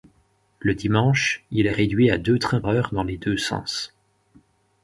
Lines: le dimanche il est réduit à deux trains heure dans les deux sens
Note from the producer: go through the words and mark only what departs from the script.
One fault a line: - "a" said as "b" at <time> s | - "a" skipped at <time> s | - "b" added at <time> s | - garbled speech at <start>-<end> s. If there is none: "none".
none